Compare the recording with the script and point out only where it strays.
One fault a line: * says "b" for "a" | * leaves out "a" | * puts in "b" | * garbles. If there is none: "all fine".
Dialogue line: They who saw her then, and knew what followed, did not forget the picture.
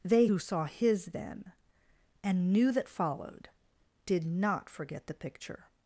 * says "his" for "her"
* says "that" for "what"